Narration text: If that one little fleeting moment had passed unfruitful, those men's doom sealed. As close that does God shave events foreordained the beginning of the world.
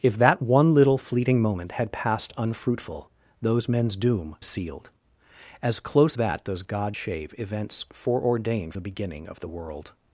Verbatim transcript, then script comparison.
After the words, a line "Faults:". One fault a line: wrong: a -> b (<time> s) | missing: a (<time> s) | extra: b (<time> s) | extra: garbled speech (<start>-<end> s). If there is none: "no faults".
If that one little fleeting moment had passed unfruitful, those men's doom sealed. As close that does God shave events foreordained the beginning of the world.
Faults:
no faults